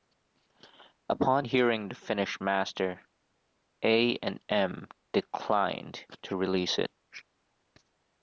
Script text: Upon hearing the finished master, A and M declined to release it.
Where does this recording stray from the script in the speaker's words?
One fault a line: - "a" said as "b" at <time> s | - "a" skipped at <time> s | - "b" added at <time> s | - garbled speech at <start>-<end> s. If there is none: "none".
none